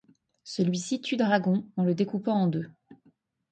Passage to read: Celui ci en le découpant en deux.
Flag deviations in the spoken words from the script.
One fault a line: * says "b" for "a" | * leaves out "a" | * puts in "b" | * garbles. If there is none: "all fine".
* puts in "tue Dragon"